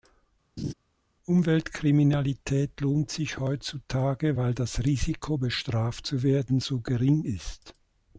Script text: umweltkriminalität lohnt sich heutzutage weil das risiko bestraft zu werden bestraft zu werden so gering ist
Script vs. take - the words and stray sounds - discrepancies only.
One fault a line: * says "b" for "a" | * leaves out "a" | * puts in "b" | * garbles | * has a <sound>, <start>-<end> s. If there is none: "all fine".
* has a laugh, 0.6-0.7 s
* leaves out "bestraft zu werden"